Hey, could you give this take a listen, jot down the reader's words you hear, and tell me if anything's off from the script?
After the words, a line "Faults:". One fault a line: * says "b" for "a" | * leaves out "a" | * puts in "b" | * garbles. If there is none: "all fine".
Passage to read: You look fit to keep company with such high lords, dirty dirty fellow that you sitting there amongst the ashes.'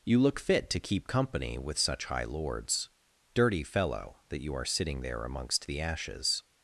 You look fit to keep company with such high lords, dirty fellow that you are sitting there amongst the ashes.'
Faults:
* leaves out "dirty"
* puts in "are"